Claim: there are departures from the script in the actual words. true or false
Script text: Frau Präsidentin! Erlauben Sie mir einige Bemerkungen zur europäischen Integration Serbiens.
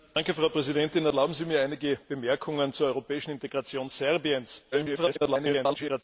true